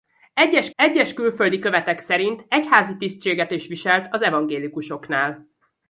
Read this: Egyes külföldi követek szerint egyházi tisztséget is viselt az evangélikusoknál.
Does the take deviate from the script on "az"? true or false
false